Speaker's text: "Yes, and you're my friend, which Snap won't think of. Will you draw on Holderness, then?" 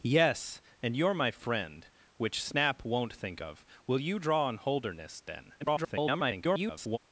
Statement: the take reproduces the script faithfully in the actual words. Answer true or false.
false